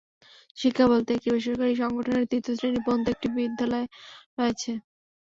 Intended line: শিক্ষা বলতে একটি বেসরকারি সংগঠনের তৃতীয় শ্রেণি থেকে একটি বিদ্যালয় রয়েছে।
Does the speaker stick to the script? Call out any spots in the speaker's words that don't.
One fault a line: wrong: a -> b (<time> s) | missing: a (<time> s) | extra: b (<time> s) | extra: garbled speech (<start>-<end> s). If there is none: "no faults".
wrong: থেকে -> পর্যন্ত (2.8 s)